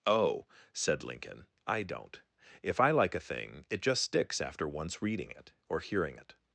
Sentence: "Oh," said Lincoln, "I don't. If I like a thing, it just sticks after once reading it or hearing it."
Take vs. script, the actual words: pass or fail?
pass